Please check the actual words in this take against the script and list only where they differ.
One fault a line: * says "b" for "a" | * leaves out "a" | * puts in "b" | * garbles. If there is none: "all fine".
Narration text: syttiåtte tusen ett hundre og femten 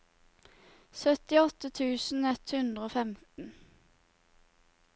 all fine